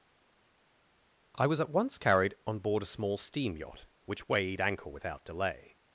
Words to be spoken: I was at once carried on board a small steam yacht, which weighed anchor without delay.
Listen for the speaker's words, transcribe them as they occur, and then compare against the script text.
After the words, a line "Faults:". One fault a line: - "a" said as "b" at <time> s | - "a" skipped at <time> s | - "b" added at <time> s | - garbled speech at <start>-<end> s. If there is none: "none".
I was at once carried on board a small steam yacht, which weighed anchor without delay.
Faults:
none